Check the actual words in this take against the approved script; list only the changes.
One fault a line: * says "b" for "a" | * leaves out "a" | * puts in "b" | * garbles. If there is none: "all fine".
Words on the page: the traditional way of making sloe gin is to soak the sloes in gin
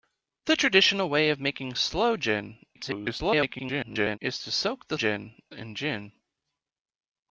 * garbles
* says "gin" for "sloes"